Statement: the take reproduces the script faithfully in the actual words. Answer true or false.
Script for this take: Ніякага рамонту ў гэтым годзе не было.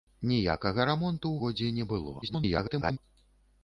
false